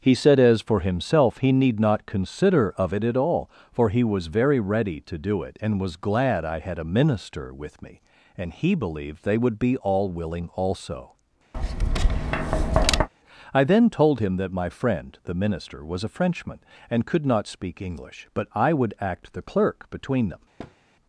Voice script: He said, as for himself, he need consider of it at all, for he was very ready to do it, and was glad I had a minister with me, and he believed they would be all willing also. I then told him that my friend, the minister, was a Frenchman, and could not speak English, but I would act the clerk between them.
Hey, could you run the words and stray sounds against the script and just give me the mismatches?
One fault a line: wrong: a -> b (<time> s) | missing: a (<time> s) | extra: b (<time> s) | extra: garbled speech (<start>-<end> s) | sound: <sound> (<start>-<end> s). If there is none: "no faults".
extra: not (1.8 s)
sound: tap (11.5-13.1 s)
sound: thud (20.6-20.8 s)